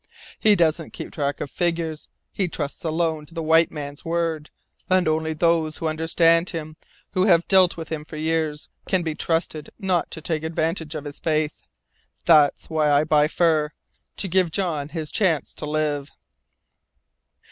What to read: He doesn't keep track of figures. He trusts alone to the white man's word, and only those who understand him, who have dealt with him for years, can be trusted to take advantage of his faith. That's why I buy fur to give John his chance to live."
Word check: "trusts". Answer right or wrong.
right